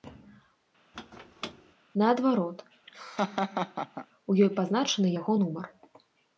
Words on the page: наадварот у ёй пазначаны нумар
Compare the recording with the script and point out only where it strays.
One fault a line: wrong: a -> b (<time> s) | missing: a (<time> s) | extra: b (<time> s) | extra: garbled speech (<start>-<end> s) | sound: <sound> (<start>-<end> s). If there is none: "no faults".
sound: squeak (0.9-1.7 s)
sound: laugh (2.9-4.1 s)
extra: яго (5.2 s)